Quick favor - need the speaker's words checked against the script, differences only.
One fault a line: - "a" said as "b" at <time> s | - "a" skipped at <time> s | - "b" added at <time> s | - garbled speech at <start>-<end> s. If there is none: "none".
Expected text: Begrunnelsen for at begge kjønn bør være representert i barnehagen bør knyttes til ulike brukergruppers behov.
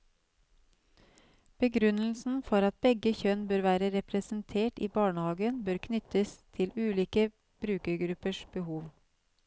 none